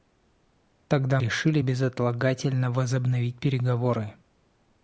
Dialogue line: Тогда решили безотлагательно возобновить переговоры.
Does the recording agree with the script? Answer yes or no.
yes